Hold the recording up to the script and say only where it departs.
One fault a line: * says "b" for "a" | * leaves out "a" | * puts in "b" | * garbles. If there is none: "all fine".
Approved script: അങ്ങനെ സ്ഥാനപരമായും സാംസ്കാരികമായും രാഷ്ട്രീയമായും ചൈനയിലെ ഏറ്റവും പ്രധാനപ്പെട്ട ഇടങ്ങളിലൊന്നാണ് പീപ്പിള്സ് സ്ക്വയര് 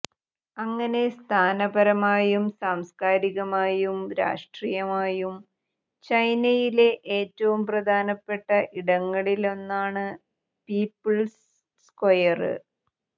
all fine